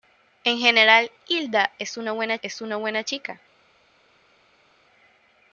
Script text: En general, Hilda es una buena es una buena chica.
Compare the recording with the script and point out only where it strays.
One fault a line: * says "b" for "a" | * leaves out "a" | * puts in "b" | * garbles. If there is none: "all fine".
all fine